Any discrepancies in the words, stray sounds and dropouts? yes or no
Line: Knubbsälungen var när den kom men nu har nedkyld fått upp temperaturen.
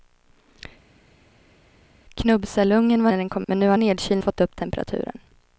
no